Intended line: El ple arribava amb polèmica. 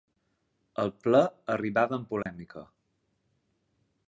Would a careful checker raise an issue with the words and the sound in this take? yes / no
yes